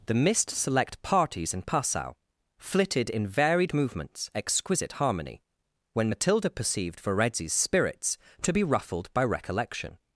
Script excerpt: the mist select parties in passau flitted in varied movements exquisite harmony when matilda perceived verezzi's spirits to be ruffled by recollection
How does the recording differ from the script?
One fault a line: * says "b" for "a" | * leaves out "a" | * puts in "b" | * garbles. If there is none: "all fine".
all fine